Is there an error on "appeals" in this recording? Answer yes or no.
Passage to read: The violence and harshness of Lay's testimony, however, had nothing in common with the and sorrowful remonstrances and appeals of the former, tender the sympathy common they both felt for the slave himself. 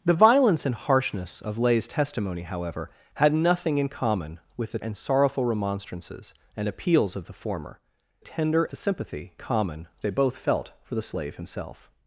no